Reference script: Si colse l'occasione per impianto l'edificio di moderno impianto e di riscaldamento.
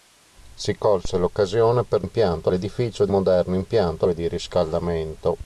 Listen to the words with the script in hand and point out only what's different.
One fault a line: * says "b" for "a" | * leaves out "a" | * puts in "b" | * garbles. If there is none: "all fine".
all fine